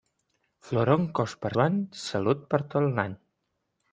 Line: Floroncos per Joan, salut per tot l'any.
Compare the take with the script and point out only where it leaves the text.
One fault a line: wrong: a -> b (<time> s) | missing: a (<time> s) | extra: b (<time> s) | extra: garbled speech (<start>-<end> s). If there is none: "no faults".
no faults